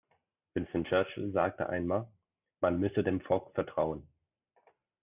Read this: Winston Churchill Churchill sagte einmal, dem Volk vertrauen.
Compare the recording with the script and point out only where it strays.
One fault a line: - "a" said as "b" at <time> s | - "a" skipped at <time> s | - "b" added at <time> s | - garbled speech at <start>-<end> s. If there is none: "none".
- "Churchill" skipped at 1.3 s
- "man müsse" added at 2.6 s